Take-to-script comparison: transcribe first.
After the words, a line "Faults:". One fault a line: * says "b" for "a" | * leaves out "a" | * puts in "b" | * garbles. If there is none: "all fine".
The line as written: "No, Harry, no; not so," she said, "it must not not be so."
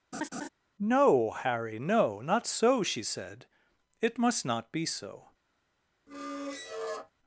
"No, Harry, no; not so," she said, "it must not be so."
Faults:
* leaves out "not"